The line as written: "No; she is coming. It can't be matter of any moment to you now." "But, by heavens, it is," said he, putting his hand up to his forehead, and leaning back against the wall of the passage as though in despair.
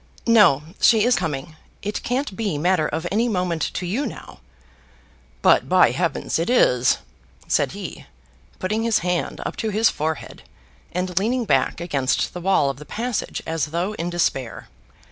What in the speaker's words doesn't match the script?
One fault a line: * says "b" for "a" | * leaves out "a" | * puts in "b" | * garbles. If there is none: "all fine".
all fine